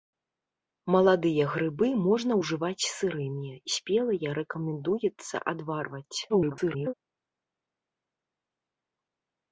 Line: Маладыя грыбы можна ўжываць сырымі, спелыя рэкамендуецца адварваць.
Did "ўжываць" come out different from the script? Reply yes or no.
no